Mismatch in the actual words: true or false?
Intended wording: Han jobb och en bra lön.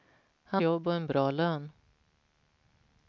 false